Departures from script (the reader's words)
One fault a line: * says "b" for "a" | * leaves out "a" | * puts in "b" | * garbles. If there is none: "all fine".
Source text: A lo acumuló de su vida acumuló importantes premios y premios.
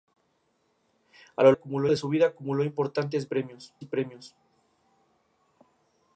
all fine